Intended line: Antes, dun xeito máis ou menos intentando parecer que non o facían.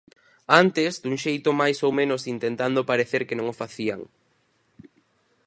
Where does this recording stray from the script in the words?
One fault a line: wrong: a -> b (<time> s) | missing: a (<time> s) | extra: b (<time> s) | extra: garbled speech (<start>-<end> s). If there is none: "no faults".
no faults